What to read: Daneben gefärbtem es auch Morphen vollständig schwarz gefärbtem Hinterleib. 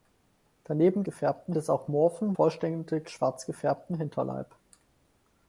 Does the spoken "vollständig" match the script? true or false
true